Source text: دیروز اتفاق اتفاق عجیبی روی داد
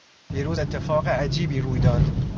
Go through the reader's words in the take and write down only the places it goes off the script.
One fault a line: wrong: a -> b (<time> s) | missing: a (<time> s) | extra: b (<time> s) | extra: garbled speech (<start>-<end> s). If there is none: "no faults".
missing: اتفاق (1.1 s)